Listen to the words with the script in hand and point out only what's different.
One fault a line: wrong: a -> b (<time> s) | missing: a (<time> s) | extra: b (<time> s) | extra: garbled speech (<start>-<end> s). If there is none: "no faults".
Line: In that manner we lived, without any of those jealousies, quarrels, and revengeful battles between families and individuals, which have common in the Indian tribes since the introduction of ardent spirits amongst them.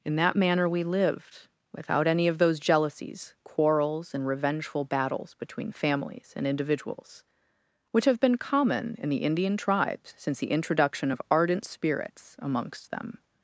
extra: been (8.2 s)